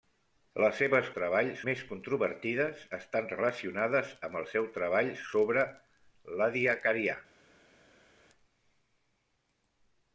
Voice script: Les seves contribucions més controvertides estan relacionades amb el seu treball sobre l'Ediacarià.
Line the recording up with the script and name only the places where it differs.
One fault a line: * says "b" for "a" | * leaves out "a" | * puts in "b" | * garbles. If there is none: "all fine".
* says "treball" for "contribucions"